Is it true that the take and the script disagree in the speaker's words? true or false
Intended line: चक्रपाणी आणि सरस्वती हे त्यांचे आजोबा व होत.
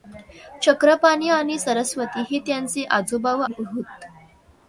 false